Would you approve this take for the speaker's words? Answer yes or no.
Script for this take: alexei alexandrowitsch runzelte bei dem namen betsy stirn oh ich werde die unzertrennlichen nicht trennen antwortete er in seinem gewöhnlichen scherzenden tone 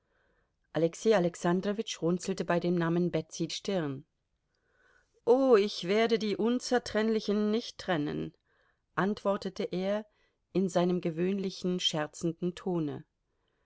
yes